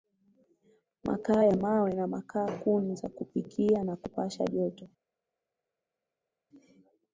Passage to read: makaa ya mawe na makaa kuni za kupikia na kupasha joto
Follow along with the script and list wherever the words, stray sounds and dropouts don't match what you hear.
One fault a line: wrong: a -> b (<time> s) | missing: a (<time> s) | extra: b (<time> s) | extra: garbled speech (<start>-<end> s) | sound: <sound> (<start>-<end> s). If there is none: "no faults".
no faults